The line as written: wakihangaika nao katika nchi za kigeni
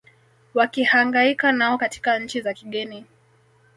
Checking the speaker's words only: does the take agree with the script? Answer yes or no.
yes